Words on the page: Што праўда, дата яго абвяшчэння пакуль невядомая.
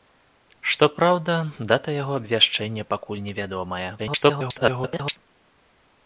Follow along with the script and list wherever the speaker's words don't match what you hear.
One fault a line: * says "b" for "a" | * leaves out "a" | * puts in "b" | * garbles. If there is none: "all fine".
* garbles